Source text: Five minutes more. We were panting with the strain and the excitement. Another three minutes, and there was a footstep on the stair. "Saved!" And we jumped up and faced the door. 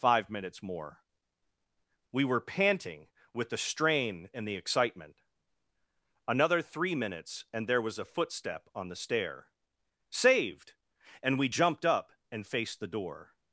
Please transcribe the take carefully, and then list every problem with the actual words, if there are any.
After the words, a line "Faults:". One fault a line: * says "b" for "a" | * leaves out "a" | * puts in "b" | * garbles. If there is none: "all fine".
Five minutes more. We were panting with the strain and the excitement. Another three minutes, and there was a footstep on the stair. "Saved!" And we jumped up and faced the door.
Faults:
all fine